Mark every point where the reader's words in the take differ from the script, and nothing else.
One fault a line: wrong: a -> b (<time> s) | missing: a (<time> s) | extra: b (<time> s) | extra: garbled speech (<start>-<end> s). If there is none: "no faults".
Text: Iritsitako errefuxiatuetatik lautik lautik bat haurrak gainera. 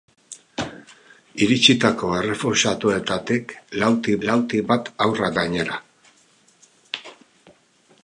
no faults